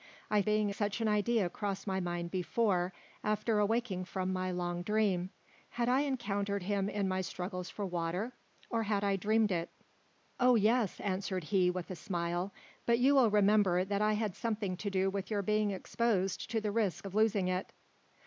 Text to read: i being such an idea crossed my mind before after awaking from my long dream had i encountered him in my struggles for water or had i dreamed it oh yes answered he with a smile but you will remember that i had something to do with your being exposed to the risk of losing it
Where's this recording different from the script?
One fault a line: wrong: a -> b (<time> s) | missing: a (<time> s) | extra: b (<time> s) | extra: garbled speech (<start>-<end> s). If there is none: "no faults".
no faults